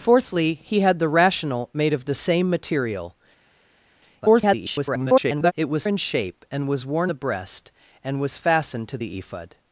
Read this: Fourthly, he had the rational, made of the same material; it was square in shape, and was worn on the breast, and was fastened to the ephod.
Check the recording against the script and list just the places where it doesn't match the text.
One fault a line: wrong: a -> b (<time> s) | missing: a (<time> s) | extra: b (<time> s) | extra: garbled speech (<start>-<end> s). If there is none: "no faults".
extra: garbled speech (4.2-5.5 s)
missing: square (5.8 s)
missing: on (7.1 s)